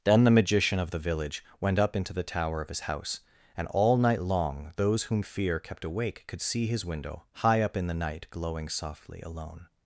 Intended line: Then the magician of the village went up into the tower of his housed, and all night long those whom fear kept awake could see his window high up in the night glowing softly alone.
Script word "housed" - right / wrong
wrong